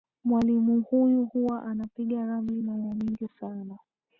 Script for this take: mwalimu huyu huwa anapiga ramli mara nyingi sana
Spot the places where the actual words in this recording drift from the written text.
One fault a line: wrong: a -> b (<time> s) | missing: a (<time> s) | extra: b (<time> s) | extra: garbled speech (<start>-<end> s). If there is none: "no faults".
no faults